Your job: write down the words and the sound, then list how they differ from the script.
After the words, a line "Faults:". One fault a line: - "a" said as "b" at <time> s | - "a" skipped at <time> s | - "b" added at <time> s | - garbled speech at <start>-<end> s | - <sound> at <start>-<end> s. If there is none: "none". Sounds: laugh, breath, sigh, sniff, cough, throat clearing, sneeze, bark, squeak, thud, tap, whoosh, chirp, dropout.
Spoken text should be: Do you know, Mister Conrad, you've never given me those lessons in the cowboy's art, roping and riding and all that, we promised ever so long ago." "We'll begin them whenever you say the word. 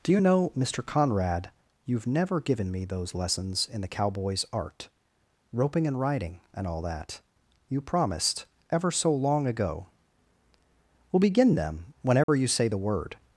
Do you know, Mister Conrad, you've never given me those lessons in the cowboy's art, roping and riding and all that, you promised ever so long ago." "We'll begin them whenever you say the word.
Faults:
- "we" said as "you" at 7.7 s
- dropout at 12.2-12.3 s